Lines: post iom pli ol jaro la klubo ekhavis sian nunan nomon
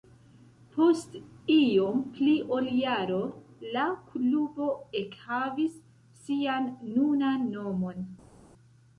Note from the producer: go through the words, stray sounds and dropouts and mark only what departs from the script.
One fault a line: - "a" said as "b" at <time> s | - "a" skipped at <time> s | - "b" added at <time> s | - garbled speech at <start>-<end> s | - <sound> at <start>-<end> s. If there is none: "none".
none